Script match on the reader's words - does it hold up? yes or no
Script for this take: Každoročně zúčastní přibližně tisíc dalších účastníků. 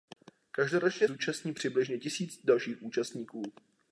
yes